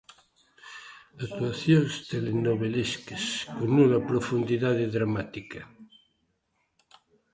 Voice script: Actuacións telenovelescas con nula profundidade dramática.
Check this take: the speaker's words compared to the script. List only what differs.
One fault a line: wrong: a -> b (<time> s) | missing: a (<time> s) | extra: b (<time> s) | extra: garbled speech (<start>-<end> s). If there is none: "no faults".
no faults